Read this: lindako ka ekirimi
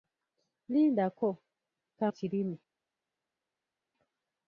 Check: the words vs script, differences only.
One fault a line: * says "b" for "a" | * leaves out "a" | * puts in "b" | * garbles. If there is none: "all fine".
all fine